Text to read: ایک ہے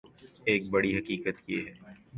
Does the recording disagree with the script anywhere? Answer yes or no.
yes